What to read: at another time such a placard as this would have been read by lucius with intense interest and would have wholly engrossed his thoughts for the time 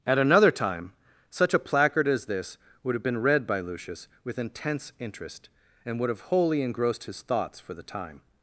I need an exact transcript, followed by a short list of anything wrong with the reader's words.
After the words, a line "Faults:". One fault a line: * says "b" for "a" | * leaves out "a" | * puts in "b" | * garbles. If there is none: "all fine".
at another time such a placard as this would have been read by lucius with intense interest and would have wholly engrossed his thoughts for the time
Faults:
all fine